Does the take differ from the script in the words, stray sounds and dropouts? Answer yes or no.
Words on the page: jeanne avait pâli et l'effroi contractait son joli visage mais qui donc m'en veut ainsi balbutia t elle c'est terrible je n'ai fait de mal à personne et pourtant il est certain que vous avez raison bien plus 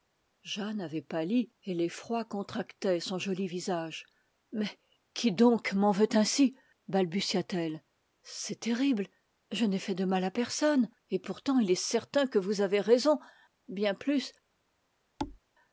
yes